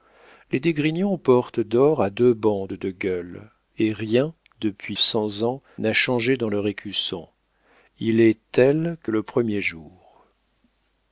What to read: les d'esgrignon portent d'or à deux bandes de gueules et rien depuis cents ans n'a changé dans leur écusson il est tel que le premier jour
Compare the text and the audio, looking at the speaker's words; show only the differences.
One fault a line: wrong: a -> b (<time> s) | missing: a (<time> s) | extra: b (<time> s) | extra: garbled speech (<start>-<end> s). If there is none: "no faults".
no faults